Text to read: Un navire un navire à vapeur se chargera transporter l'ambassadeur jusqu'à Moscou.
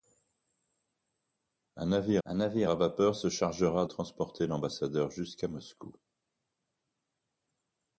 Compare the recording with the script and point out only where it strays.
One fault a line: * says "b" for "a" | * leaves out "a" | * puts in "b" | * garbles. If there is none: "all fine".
all fine